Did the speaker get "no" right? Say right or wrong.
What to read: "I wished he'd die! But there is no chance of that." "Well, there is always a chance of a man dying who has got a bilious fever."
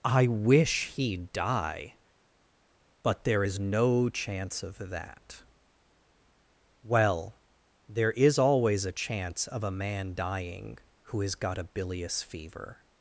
right